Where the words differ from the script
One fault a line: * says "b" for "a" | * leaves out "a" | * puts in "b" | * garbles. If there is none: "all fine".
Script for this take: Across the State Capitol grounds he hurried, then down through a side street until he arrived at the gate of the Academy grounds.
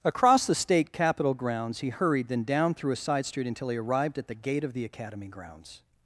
all fine